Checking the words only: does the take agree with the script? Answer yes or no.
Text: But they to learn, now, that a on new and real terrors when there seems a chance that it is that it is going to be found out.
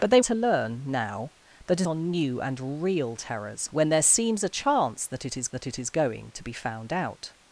yes